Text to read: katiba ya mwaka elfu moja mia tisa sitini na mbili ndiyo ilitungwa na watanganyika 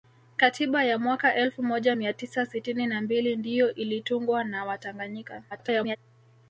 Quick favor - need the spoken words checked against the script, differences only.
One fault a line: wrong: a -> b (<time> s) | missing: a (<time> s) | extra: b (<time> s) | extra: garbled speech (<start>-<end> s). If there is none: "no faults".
extra: garbled speech (5.5-6.0 s)